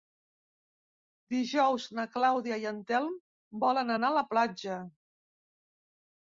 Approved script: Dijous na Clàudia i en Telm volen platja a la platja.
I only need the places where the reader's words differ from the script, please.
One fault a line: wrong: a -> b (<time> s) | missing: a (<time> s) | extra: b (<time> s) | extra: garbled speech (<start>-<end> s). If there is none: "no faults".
wrong: platja -> anar (4.0 s)